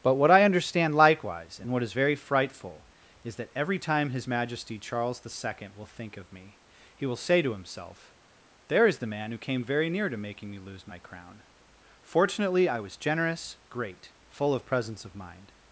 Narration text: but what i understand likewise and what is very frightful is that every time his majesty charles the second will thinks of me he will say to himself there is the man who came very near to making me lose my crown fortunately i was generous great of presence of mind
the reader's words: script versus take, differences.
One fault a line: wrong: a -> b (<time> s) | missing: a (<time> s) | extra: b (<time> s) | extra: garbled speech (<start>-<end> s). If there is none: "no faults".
wrong: thinks -> think (5.9 s)
extra: full (14.3 s)